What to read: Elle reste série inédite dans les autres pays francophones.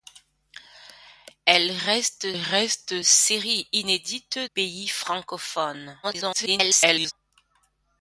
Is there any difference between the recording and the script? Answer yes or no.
yes